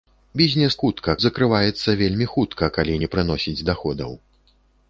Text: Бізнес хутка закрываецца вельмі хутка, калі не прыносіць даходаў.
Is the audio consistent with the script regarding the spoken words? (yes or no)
yes